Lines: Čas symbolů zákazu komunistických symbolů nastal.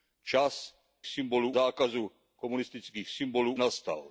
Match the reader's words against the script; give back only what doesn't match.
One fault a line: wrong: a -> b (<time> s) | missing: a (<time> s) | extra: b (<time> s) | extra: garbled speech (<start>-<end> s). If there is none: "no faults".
no faults